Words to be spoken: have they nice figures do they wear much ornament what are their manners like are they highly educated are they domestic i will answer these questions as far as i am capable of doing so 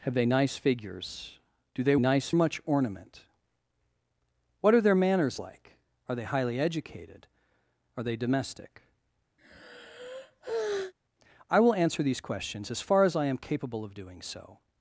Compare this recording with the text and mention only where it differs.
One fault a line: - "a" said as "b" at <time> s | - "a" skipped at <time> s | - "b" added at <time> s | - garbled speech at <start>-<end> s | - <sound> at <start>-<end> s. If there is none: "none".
- "wear" said as "nice" at 2.0 s
- sigh at 9.4-10.9 s